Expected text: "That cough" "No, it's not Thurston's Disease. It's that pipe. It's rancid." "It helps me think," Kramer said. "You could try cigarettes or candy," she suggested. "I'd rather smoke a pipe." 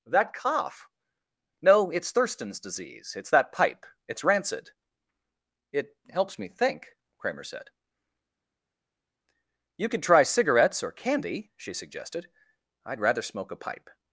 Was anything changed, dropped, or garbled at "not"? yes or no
yes